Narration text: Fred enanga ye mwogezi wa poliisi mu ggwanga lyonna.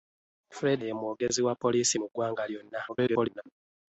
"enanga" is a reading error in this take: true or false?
true